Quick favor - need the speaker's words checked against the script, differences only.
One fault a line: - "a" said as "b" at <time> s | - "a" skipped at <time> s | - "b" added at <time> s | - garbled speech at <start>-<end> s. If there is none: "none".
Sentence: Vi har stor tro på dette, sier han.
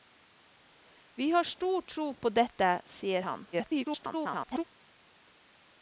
- garbled speech at 3.5-4.6 s